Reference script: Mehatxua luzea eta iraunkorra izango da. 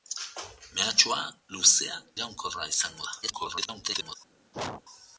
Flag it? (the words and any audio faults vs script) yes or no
yes